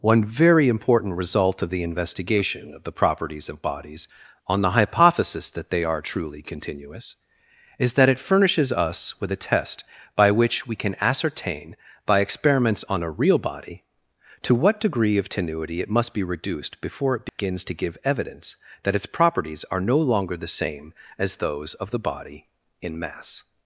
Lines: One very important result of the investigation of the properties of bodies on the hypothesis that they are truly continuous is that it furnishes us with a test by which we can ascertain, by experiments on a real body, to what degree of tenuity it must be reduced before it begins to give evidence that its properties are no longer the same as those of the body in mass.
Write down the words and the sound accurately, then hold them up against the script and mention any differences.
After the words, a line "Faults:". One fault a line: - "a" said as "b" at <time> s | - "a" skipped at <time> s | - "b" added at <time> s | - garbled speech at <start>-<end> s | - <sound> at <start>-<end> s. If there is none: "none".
One very important result of the investigation of the properties of bodies on the hypothesis that they are truly continuous is that it furnishes us with a test by which we can ascertain, by experiments on a real body, to what degree of tenuity it must be reduced before it begins to give evidence that its properties are no longer the same as those of the body in mass.
Faults:
- dropout at 17.3-17.4 s